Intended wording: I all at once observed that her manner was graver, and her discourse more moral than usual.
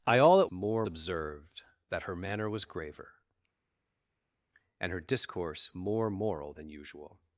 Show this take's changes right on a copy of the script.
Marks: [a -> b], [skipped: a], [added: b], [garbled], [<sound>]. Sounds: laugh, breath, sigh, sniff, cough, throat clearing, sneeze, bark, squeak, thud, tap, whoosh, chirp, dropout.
I all at [once -> more] observed that her manner was graver, and her discourse more moral than usual.